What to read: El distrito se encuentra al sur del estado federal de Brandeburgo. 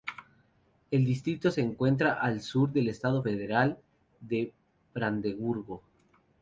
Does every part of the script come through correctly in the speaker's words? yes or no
yes